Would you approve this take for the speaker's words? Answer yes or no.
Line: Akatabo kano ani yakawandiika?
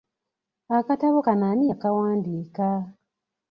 yes